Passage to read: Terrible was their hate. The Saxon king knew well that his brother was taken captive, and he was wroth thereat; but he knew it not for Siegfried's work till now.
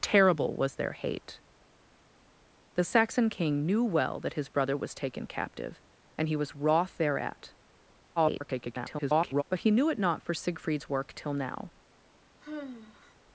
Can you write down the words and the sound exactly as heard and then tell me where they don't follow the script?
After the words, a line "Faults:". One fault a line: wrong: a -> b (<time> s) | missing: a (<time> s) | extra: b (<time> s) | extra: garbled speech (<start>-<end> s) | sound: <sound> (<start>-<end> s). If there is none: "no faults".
Terrible was their hate. The Saxon king knew well that his brother was taken captive, and he was wroth thereat; [garbled] but he knew it not for Siegfried's work till now.
Faults:
extra: garbled speech (8.2-9.4 s)
sound: sigh (12.4-13.2 s)